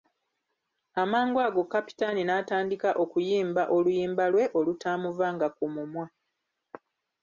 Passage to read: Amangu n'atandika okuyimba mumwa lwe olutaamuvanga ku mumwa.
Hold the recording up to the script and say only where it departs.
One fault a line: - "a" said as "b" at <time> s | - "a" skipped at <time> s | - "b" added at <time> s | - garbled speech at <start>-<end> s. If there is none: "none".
- "ago Kapitaani" added at 1.5 s
- "mumwa" said as "oluyimba" at 3.8 s